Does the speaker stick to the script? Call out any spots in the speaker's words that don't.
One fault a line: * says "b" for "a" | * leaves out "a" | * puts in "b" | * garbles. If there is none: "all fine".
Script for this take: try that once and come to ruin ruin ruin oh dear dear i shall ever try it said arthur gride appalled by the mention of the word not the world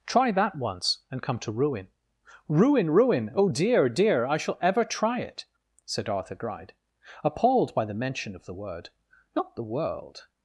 all fine